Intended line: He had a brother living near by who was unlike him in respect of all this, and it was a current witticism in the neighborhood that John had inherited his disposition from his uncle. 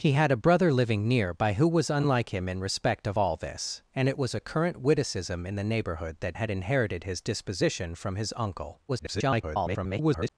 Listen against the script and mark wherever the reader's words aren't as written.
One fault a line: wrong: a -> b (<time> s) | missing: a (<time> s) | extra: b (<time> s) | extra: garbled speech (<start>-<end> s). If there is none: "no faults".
missing: John (6.4 s)
extra: garbled speech (8.9-10.3 s)